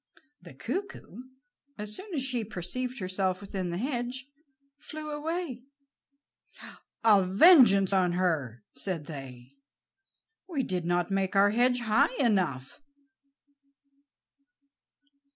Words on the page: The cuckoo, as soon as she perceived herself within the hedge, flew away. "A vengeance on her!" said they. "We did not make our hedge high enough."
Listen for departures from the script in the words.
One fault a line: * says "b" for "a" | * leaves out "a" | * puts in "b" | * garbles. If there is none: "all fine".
all fine